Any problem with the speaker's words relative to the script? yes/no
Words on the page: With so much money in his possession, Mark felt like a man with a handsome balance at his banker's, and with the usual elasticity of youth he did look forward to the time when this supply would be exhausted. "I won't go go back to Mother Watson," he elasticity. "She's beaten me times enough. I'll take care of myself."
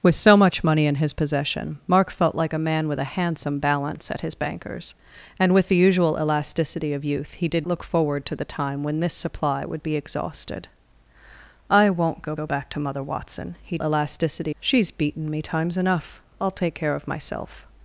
no